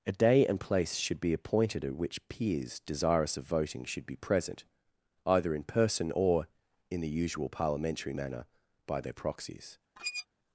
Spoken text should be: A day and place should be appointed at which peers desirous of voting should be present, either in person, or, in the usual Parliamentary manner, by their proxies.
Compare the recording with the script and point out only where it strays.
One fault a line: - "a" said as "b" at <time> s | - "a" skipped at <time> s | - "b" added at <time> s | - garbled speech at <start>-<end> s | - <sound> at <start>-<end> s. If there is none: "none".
- squeak at 10.0-10.3 s